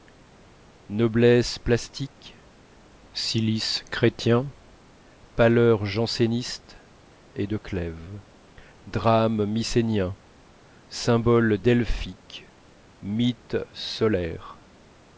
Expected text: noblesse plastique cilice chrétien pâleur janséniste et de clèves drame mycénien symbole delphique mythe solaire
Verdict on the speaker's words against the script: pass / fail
pass